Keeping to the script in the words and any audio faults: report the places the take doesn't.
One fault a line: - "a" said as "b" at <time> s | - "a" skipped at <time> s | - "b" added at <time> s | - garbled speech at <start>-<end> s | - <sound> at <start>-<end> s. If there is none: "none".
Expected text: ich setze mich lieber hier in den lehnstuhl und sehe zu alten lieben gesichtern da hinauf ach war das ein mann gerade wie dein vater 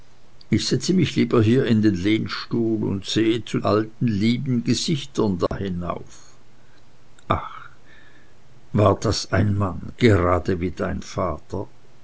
- dropout at 5.5-5.5 s